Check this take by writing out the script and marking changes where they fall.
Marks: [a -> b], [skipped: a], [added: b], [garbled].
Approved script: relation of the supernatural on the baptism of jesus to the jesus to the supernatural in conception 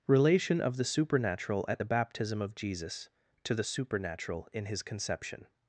relation of the supernatural [on -> at] the baptism of jesus to the [skipped: jesus to the] supernatural in [added: his] conception